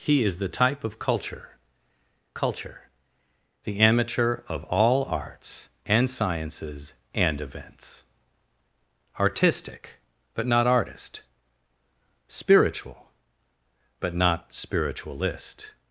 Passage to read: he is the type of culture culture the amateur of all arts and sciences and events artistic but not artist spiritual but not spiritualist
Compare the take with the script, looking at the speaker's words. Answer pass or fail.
pass